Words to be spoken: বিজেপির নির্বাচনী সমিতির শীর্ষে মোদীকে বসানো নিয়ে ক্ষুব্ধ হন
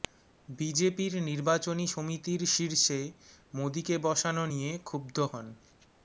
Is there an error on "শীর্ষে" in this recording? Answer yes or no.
no